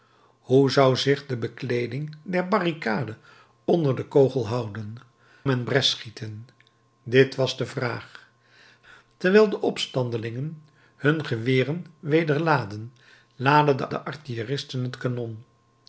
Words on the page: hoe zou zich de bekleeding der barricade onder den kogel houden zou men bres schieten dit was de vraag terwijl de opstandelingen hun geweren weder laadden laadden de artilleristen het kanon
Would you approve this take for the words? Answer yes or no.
no